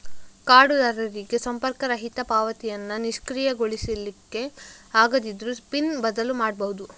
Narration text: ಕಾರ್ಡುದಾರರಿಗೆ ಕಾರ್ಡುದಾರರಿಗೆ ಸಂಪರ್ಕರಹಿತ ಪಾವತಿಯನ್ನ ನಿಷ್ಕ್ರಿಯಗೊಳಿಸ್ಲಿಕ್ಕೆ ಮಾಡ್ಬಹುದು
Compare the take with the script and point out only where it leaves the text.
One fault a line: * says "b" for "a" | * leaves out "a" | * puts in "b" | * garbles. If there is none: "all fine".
* leaves out "ಕಾರ್ಡುದಾರರಿಗೆ"
* puts in "ಆಗದಿದ್ರೂ ಪಿನ್ ಬದಲು"